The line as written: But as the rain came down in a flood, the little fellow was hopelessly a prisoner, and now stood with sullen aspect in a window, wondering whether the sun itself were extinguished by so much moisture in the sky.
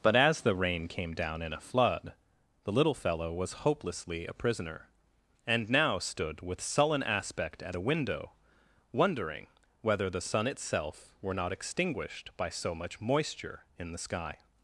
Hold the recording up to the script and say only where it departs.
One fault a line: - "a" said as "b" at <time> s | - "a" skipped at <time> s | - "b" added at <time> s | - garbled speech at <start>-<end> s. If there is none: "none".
- "in" said as "at" at 7.6 s
- "not" added at 11.3 s